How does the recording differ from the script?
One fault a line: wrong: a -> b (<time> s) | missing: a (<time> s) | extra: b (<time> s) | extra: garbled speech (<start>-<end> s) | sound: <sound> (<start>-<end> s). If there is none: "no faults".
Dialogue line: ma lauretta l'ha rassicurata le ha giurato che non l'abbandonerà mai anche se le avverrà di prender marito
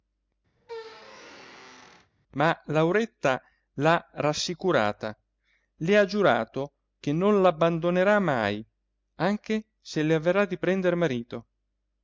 sound: squeak (0.6-2.1 s)